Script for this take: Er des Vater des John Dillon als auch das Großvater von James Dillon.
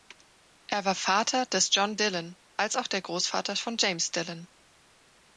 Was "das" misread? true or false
true